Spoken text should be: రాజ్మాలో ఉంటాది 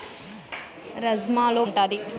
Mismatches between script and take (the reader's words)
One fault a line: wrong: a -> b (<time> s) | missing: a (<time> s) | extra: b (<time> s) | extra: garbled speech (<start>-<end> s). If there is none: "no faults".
no faults